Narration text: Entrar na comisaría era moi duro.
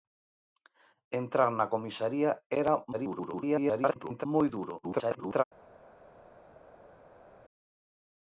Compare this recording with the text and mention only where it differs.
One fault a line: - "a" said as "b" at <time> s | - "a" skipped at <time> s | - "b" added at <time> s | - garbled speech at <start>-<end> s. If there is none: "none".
- garbled speech at 2.9-4.3 s
- garbled speech at 4.8-5.4 s